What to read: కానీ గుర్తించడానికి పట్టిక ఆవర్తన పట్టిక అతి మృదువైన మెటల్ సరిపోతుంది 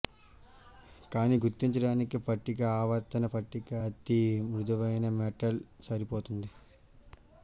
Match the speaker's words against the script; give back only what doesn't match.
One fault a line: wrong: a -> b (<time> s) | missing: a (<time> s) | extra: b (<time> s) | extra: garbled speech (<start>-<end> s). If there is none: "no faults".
no faults